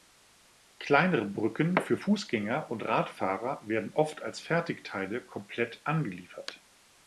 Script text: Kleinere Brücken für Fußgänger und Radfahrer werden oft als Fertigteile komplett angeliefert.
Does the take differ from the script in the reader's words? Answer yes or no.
no